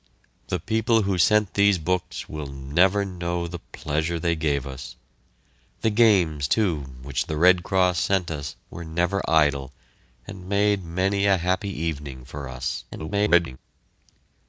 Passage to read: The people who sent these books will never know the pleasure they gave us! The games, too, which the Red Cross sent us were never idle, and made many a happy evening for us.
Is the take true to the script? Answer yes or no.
no